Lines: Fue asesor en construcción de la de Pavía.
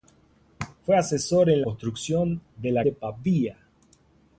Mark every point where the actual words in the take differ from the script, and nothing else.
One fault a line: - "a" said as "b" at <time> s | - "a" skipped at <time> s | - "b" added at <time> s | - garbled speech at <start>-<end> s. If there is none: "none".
none